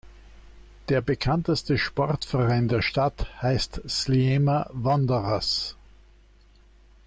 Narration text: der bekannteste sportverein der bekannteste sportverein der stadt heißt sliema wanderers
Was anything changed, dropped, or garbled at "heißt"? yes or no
no